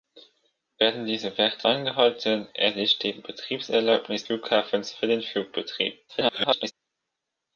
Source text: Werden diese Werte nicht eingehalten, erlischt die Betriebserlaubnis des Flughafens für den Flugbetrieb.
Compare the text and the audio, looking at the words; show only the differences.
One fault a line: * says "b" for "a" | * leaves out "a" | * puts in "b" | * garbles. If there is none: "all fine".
* leaves out "nicht"
* leaves out "des"
* garbles